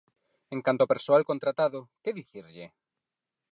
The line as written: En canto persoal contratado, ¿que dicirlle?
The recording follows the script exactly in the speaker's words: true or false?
false